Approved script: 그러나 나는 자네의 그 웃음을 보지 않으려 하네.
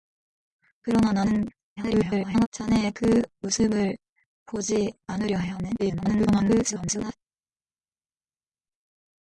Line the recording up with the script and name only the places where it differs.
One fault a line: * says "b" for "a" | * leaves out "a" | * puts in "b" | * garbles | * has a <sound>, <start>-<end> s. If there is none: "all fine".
* garbles
* garbles